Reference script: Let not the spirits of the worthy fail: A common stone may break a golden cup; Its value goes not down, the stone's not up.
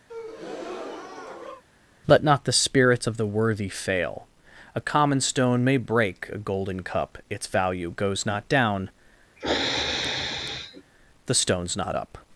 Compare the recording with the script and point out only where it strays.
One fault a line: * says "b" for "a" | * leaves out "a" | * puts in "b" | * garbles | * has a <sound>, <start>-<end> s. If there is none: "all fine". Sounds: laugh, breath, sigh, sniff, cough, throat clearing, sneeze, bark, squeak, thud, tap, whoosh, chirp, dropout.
* has a breath, 0.1-1.6 s
* has a sniff, 9.4-10.8 s